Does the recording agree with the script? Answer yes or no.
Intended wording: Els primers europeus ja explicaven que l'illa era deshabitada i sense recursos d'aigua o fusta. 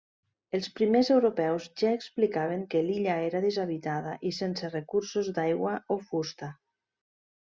yes